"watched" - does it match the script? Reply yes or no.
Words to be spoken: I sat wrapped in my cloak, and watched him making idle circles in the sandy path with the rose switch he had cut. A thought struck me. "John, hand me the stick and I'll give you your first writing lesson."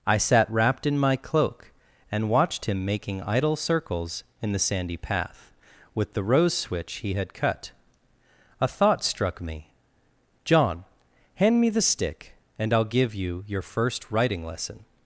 yes